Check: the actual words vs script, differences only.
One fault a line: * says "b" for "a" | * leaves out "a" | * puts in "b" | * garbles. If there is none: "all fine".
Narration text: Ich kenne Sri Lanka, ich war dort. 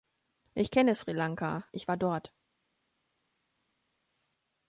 all fine